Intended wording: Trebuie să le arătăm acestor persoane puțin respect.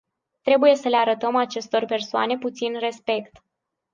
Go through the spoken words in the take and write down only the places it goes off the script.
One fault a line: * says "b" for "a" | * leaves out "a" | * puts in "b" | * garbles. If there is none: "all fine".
all fine